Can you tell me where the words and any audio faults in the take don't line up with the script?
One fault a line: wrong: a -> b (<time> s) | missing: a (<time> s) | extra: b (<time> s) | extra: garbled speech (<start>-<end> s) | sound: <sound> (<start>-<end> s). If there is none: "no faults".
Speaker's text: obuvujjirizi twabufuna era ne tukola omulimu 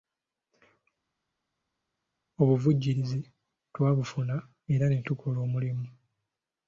no faults